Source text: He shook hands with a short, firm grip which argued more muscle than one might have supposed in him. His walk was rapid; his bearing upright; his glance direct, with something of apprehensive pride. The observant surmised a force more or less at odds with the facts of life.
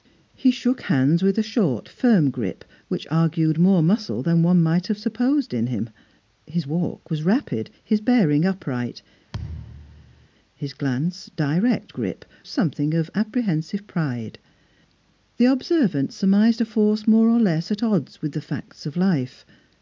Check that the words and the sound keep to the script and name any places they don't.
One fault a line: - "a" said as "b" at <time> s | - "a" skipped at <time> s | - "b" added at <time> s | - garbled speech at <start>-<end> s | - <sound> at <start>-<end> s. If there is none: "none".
- thud at 9.3-10.3 s
- "with" said as "grip" at 11.9 s